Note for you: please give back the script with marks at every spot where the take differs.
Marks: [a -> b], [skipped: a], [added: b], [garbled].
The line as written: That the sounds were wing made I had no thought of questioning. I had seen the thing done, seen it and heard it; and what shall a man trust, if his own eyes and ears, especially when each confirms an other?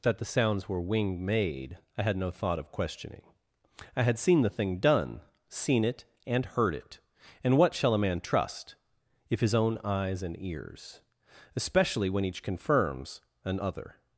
That the sounds were wing made I had no thought of questioning. I had seen the thing done, seen it and heard it; and what shall a man trust, if his own eyes and ears, especially when each confirms an other?